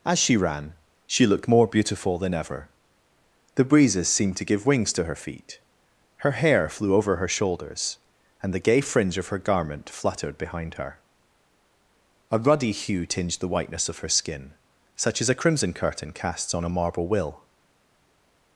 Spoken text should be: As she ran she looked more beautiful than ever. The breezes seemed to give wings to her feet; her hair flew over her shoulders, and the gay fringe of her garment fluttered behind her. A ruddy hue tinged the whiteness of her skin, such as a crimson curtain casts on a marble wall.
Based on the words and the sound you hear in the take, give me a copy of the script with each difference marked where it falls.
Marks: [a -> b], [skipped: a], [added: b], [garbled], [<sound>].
As she ran she looked more beautiful than ever. The breezes seemed to give wings to her feet; her hair flew over her shoulders, and the gay fringe of her garment fluttered behind her. A ruddy hue tinged the whiteness of her skin, such as a crimson curtain casts on a marble [wall. -> will]